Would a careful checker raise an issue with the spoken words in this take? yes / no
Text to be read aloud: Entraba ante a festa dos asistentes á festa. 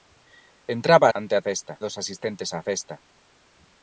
no